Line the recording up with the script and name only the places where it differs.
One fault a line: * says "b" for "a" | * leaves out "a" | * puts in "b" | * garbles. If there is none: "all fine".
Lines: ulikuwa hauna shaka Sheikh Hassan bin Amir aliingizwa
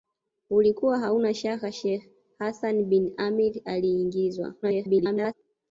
* garbles